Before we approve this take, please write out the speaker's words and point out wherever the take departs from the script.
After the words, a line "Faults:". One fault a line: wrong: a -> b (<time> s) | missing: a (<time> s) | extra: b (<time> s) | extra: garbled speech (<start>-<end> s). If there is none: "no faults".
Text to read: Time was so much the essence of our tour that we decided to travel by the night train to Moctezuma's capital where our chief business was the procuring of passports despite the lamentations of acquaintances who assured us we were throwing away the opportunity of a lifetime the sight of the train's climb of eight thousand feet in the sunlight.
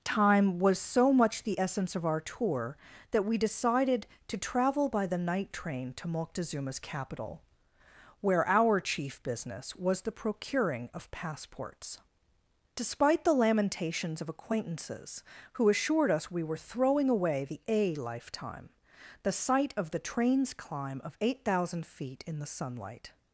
Time was so much the essence of our tour that we decided to travel by the night train to Moctezuma's capital where our chief business was the procuring of passports despite the lamentations of acquaintances who assured us we were throwing away the a lifetime the sight of the train's climb of eight thousand feet in the sunlight.
Faults:
missing: opportunity of (17.6 s)